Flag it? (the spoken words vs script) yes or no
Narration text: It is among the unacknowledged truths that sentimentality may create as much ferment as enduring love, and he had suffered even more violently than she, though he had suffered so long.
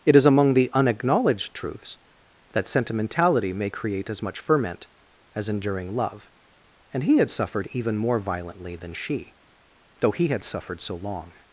no